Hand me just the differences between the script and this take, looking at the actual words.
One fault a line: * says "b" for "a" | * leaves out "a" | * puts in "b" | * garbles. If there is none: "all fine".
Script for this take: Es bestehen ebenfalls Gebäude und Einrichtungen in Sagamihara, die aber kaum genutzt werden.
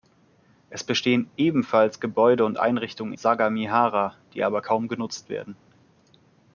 * leaves out "in"